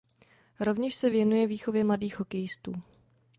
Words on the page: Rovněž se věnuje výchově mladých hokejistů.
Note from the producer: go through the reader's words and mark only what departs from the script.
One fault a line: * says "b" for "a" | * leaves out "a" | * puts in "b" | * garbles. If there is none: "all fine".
all fine